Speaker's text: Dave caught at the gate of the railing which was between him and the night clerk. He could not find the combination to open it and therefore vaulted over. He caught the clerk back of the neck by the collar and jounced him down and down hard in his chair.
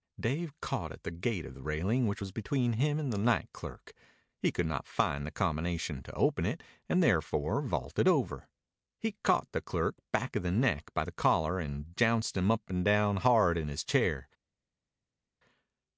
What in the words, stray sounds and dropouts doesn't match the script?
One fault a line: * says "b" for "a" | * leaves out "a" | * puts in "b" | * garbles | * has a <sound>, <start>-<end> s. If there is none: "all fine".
* says "up" for "down"